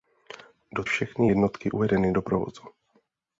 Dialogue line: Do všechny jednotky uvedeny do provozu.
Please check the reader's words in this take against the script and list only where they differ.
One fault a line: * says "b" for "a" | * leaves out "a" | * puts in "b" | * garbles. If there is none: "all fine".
all fine